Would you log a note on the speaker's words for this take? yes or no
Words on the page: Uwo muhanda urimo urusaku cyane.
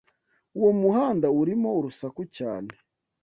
no